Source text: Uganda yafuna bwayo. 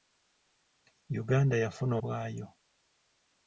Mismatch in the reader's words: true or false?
false